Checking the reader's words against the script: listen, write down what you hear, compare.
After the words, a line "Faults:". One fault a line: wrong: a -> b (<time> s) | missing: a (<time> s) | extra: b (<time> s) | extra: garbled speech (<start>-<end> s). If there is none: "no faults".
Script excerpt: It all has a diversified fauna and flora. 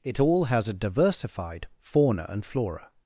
It all has a diversified fauna and flora.
Faults:
no faults